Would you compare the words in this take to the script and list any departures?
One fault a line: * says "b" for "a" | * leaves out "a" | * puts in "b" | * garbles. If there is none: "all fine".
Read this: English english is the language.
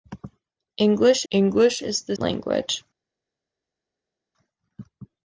all fine